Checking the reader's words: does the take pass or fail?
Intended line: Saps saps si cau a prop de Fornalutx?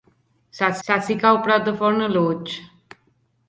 pass